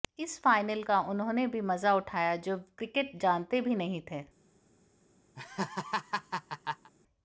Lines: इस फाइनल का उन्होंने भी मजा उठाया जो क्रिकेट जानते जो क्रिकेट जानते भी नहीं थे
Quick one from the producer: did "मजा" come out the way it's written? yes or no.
yes